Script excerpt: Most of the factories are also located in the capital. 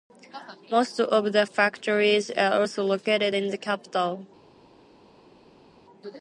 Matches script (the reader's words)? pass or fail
pass